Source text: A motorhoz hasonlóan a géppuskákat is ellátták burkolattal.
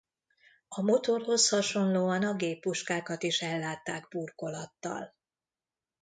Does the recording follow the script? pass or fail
pass